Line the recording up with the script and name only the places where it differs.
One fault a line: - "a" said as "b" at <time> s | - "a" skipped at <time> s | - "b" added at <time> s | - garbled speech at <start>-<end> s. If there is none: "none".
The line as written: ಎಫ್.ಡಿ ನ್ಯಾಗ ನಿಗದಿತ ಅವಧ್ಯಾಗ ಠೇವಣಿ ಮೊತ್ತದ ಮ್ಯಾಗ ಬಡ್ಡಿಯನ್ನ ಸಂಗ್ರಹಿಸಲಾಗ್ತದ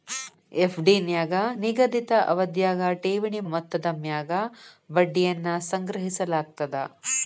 none